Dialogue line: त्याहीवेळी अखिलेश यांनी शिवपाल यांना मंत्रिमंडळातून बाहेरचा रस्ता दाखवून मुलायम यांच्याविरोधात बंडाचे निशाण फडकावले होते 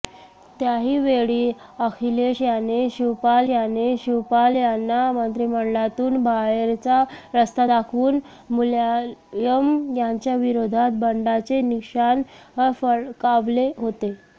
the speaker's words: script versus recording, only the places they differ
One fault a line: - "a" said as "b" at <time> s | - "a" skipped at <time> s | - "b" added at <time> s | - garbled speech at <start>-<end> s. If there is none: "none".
- "यांनी शिवपाल" added at 3.5 s